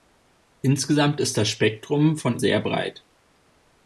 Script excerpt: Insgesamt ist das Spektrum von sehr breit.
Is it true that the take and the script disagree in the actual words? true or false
false